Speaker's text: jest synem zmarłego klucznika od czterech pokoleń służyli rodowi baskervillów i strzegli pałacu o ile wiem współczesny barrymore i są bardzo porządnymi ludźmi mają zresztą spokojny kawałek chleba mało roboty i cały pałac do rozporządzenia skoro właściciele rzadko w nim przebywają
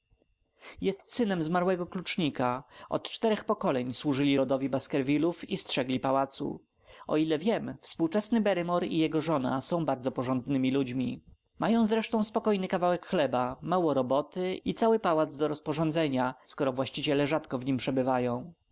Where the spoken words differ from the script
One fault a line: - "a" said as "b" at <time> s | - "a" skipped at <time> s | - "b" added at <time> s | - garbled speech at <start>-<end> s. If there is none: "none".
- "jego żona" added at 9.0 s